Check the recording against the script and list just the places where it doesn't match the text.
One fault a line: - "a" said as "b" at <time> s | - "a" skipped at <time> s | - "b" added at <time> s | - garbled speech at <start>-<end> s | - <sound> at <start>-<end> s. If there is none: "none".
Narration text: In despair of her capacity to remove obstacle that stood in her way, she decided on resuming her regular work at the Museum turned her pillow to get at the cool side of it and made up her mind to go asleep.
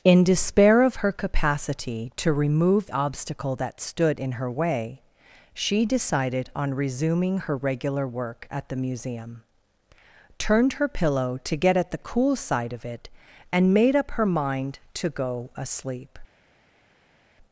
none